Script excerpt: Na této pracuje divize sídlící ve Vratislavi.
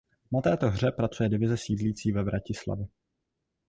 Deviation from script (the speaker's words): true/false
true